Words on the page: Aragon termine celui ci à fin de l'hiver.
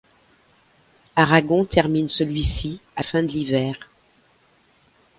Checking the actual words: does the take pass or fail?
pass